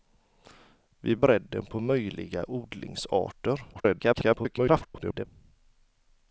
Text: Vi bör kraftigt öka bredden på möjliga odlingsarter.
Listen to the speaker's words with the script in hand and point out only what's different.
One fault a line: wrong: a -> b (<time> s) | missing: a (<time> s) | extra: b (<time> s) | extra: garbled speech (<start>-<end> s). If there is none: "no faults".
missing: bör kraftigt öka (1.1 s)
extra: garbled speech (3.7-5.2 s)